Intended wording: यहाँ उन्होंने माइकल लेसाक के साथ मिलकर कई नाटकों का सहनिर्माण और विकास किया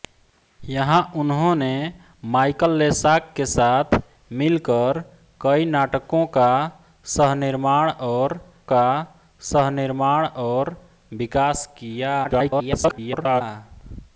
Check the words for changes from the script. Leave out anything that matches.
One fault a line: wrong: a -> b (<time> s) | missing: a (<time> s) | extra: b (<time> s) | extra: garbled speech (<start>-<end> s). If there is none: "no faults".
extra: का सहनिर्माण और (8.7 s)
extra: garbled speech (12.2-13.4 s)